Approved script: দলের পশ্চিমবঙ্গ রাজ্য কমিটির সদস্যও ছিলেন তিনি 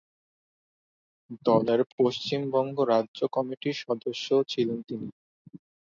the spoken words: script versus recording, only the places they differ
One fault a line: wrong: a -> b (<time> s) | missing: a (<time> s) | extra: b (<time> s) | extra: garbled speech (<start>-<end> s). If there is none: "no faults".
no faults